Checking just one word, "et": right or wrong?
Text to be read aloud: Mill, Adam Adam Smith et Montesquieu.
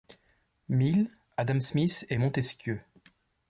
right